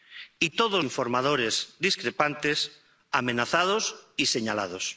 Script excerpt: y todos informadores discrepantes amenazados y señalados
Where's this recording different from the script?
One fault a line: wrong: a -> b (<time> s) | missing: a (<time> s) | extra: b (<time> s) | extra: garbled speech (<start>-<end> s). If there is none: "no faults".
no faults